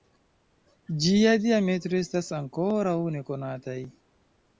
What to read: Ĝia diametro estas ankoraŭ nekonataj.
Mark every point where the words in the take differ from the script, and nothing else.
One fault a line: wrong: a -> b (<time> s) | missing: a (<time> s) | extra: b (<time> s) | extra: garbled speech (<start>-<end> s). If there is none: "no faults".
no faults